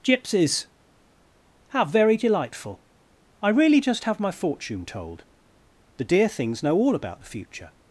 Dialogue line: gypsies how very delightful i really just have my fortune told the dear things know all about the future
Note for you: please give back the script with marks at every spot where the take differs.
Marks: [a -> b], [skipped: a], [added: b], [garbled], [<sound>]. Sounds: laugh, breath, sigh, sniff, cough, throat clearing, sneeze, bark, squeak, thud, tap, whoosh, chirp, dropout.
gypsies how very delightful i really just have my fortune told the dear things know all about the future